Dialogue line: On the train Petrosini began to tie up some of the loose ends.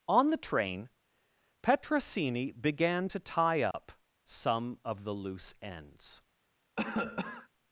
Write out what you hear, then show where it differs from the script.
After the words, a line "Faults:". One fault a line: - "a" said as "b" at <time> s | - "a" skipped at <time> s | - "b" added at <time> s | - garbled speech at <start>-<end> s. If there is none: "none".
On the train Petrosini began to tie up some of the loose ends.
Faults:
none